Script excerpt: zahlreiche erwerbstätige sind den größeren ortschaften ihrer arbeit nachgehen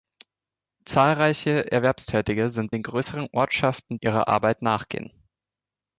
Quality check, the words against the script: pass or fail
pass